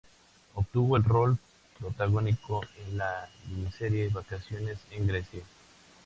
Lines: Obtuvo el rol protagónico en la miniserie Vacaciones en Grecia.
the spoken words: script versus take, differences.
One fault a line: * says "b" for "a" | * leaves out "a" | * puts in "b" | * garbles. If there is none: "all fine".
all fine